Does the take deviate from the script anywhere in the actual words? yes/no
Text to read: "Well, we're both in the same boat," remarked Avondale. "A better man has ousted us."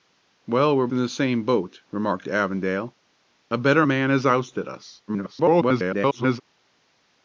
yes